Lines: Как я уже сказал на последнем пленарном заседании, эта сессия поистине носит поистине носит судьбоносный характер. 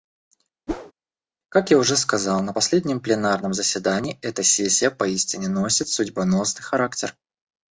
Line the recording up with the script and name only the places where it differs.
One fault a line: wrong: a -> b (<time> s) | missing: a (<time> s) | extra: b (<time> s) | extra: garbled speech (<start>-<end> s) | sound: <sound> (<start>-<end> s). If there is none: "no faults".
sound: whoosh (0.7-0.9 s)
missing: поистине носит (5.9 s)